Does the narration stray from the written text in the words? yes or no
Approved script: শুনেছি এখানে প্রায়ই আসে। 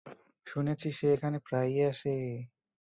yes